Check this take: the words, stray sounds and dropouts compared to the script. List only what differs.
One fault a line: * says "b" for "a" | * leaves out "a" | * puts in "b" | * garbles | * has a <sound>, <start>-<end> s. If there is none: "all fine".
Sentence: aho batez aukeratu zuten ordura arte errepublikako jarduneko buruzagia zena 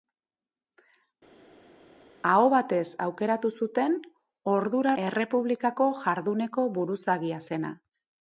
* leaves out "arte"